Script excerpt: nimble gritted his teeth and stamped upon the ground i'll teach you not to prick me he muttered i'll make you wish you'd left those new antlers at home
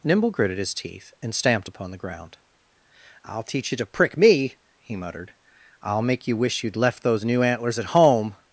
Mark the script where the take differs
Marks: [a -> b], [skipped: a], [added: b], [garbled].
nimble gritted his teeth and stamped upon the ground i'll teach you [skipped: not] to prick me he muttered i'll make you wish you'd left those new antlers at home